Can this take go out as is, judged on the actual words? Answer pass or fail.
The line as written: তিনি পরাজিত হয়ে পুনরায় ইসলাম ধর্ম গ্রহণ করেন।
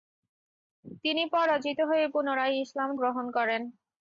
fail